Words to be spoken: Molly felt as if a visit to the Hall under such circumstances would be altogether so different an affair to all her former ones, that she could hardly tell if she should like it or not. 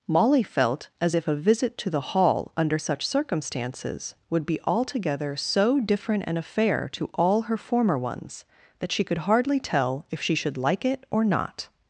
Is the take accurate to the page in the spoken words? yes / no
yes